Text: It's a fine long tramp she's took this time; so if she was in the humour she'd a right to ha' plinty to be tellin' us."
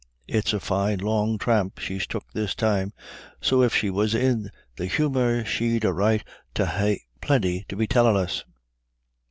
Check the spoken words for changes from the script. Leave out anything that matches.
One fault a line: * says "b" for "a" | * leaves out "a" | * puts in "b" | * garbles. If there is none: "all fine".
all fine